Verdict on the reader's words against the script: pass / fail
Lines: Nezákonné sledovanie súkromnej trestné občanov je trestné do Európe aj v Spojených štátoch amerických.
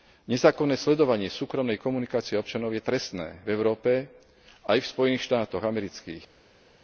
fail